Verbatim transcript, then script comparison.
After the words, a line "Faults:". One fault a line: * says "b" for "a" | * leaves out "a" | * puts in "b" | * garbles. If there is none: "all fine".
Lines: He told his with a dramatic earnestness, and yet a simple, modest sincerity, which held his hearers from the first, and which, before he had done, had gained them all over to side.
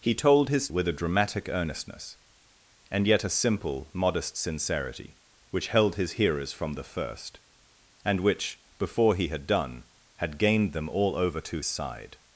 He told his with a dramatic earnestness, and yet a simple, modest sincerity, which held his hearers from the first, and which, before he had done, had gained them all over to side.
Faults:
all fine